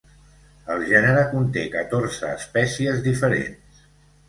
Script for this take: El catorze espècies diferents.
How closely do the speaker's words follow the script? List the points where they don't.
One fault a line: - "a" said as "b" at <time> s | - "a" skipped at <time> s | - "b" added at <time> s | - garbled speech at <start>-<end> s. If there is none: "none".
- "gènere conté" added at 0.9 s